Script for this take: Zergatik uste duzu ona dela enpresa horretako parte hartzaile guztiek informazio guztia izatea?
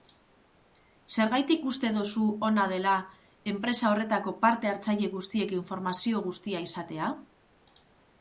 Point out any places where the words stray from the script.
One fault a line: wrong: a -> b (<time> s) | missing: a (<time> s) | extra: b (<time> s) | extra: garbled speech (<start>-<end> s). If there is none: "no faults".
no faults